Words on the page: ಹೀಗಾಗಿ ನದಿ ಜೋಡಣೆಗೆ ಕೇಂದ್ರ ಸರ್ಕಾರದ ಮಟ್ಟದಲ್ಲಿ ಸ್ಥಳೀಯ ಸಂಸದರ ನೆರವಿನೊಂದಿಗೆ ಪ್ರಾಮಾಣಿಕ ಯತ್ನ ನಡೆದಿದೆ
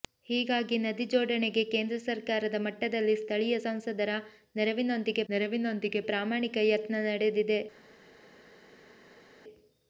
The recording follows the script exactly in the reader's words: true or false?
false